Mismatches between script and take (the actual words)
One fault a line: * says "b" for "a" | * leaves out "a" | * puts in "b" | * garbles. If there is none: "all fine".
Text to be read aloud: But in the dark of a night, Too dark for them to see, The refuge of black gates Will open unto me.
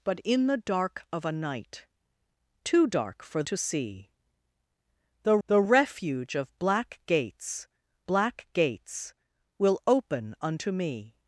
* leaves out "them"
* puts in "The"
* puts in "black gates"